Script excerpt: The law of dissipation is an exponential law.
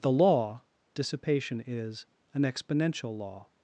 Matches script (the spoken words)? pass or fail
fail